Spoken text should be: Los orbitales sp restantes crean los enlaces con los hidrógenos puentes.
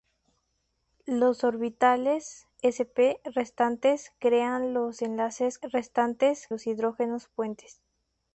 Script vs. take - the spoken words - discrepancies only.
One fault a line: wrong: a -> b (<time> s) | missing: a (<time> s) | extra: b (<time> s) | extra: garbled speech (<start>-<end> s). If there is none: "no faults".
wrong: con -> restantes (5.6 s)